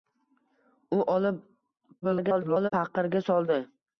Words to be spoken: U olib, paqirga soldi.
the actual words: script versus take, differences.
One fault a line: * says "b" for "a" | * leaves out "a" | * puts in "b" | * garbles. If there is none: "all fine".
* garbles